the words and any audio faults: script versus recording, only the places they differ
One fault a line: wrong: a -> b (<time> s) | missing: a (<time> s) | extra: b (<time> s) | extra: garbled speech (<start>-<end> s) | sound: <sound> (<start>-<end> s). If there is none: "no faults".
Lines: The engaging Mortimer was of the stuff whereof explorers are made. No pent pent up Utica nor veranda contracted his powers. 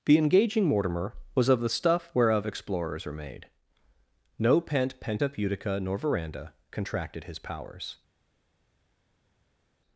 no faults